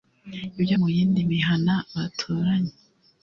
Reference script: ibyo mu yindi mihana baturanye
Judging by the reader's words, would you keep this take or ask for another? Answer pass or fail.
pass